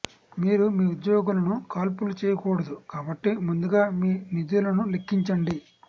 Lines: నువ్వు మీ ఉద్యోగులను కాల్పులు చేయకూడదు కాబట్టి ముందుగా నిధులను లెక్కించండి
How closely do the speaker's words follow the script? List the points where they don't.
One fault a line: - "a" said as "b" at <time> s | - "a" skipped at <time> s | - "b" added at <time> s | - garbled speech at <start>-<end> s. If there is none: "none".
- "నువ్వు" said as "మీరు" at 0.4 s
- "మీ" added at 4.0 s